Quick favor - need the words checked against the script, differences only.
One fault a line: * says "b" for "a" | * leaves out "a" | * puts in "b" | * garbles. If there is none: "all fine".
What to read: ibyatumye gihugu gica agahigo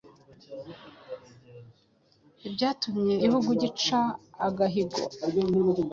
all fine